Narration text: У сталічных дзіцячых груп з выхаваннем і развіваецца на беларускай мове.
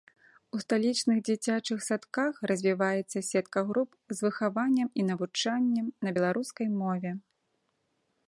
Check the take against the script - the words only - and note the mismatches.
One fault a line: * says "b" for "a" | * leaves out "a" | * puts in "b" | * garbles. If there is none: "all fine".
* puts in "садках развіваецца сетка"
* says "навучаннем" for "развіваецца"